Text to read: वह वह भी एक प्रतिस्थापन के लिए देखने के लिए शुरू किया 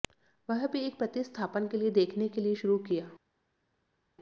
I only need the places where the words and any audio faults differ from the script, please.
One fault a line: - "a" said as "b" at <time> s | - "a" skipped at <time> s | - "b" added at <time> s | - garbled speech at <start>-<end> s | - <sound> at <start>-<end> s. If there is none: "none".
- "वह" skipped at 0.7 s